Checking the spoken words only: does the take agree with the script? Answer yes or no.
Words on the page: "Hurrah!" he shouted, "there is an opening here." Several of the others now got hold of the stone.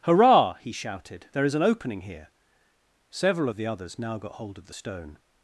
yes